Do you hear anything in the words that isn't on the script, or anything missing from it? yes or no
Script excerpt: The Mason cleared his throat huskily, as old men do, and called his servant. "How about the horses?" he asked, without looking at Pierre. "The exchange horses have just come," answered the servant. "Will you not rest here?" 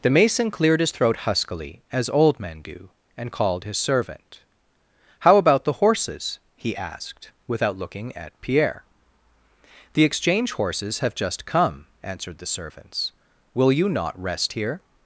yes